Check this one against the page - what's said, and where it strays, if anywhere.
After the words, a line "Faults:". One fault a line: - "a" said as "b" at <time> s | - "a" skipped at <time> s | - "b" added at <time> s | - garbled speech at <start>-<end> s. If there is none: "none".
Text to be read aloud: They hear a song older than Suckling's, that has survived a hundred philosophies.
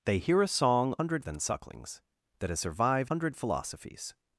They hear a song hundred than Suckling's, that has survived hundred philosophies.
Faults:
- "older" said as "hundred" at 1.0 s
- "a" skipped at 3.1 s